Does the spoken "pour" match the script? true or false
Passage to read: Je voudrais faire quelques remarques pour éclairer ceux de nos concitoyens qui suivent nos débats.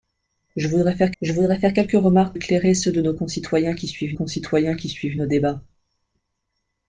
false